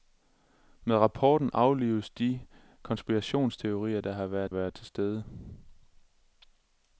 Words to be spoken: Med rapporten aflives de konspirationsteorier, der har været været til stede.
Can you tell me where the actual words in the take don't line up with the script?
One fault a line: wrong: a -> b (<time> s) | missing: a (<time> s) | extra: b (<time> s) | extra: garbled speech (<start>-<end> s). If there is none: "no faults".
no faults